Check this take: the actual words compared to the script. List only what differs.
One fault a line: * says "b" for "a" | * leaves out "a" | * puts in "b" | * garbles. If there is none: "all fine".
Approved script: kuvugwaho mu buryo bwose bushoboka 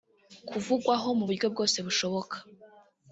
all fine